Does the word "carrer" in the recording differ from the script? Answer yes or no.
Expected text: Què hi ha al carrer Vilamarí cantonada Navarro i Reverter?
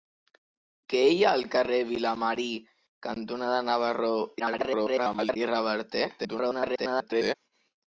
no